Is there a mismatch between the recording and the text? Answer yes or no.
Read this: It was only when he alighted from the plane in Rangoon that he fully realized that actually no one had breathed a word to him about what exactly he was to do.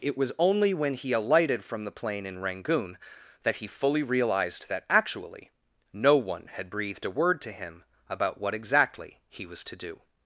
no